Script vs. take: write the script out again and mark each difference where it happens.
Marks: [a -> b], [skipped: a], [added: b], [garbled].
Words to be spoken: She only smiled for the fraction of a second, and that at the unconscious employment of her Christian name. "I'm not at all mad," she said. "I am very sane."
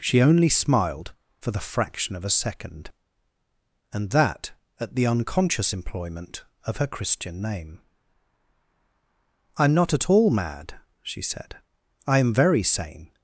She only smiled for the fraction of a second, and that at the unconscious employment of her Christian name. "I'm not at all mad," she said. "I am very sane."